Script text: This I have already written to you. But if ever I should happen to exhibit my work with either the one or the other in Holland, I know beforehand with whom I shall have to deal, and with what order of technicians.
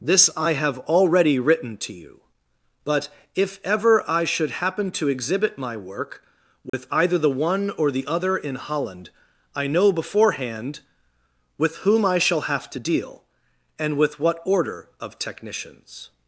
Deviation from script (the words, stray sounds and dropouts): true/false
true